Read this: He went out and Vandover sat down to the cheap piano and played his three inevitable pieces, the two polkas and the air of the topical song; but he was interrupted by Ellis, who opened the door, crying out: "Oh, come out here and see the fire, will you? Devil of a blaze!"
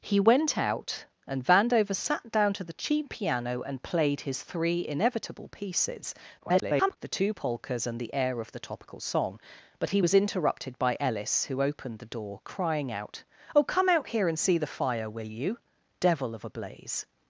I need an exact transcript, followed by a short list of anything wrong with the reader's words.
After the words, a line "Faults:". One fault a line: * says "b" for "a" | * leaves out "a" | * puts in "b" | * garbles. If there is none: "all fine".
He went out and Vandover sat down to the cheap piano and played his three inevitable pieces, [garbled] the two polkas and the air of the topical song; but he was interrupted by Ellis, who opened the door, crying out: "Oh, come out here and see the fire, will you? Devil of a blaze!"
Faults:
* garbles